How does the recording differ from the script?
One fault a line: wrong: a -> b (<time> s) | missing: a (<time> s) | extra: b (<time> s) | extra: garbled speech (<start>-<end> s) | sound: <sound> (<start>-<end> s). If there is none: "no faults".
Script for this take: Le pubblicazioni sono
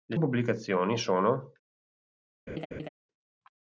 sound: laugh (2.5-2.9 s)